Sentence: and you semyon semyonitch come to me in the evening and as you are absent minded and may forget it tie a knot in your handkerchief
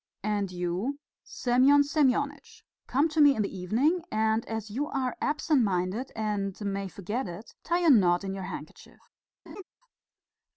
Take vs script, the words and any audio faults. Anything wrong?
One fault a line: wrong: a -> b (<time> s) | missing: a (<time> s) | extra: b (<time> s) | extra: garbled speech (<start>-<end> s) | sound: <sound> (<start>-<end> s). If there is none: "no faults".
sound: laugh (9.5-9.6 s)